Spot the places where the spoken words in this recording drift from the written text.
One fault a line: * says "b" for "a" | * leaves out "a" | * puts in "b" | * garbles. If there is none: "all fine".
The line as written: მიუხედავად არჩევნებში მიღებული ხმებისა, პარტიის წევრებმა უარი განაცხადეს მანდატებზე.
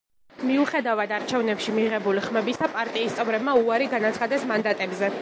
all fine